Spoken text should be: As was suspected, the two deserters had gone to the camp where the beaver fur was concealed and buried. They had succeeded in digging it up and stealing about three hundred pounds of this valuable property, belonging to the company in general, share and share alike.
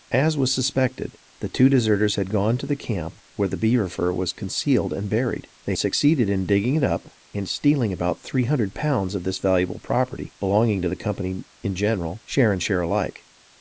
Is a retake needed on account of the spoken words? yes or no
yes